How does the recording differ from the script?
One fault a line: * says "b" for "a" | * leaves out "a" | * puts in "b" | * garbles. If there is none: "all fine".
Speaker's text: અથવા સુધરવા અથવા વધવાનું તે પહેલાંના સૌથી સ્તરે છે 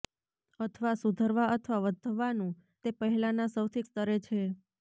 all fine